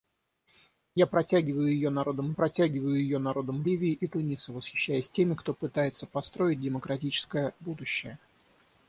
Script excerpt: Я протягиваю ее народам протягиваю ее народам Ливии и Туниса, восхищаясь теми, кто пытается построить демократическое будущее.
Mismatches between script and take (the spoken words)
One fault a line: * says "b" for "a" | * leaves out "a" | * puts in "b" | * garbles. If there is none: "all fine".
all fine